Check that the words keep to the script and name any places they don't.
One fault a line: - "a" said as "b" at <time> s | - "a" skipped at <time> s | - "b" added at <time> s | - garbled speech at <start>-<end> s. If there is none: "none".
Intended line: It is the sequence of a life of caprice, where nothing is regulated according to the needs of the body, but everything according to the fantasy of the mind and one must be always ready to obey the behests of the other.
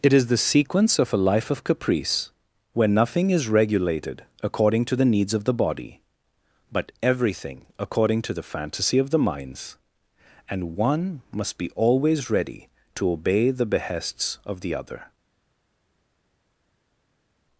- "mind" said as "minds" at 9.2 s